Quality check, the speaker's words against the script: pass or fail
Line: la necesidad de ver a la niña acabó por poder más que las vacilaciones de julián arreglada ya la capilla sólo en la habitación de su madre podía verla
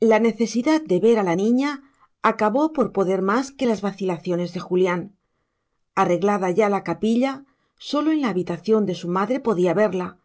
pass